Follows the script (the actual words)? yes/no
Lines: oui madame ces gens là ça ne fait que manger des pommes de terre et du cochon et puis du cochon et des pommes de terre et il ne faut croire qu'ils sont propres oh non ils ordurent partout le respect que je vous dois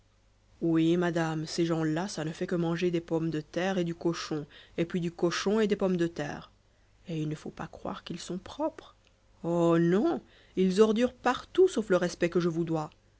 no